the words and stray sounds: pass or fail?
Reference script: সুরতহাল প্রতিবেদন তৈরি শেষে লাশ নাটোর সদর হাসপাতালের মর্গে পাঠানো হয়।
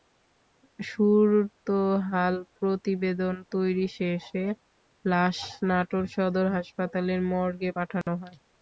fail